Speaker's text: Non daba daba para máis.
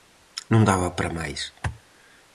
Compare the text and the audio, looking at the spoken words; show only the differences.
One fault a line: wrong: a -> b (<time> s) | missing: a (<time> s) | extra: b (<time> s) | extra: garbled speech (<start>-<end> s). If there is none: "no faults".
missing: daba (0.9 s)